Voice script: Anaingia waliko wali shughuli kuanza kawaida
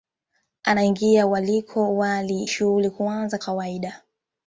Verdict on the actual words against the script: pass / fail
pass